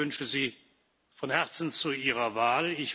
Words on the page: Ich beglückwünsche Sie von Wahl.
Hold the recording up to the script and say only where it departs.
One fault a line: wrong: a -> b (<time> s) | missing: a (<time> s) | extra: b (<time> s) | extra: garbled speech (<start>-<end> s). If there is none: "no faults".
extra: Herzen zu Ihrer (1.3 s)